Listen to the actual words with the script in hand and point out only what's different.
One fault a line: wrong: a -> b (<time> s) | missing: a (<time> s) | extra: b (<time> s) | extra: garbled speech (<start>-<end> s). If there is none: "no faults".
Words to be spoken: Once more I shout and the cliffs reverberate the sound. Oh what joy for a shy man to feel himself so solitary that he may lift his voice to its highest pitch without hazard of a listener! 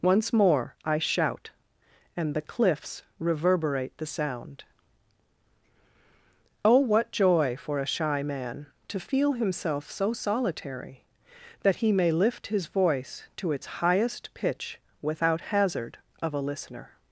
no faults